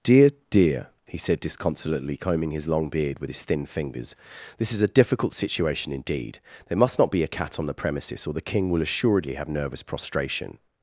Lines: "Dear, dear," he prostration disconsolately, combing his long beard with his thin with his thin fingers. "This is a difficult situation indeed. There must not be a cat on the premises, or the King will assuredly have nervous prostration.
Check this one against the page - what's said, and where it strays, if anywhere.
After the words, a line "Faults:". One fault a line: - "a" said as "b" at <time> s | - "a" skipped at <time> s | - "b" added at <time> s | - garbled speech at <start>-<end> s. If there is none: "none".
"Dear, dear," he said disconsolately, combing his long beard with his thin fingers. "This is a difficult situation indeed. There must not be a cat on the premises, or the King will assuredly have nervous prostration.
Faults:
- "prostration" said as "said" at 1.2 s
- "with his thin" skipped at 3.6 s